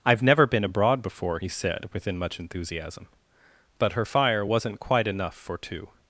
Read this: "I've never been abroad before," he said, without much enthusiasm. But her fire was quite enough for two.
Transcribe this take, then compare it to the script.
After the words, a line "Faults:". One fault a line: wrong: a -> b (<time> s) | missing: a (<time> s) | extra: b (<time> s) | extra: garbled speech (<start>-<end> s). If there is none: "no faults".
"I've never been abroad before," he said, within much enthusiasm. But her fire wasn't quite enough for two.
Faults:
wrong: without -> within (1.9 s)
wrong: was -> wasn't (4.4 s)